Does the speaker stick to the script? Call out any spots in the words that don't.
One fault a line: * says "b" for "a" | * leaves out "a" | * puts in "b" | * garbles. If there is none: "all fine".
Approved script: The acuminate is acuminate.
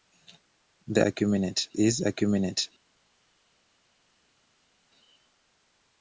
all fine